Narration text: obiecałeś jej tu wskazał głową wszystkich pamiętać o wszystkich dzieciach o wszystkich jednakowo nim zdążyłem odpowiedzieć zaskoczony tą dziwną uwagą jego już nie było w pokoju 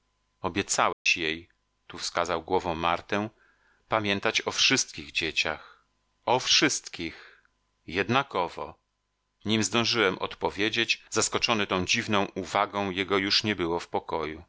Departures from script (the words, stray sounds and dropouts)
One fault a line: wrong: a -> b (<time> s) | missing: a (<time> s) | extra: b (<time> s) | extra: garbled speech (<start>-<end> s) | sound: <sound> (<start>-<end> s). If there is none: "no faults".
sound: dropout (0.9-1.1 s)
wrong: wszystkich -> martę (2.8 s)